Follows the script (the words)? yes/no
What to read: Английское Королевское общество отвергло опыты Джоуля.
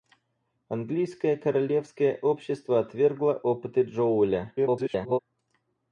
no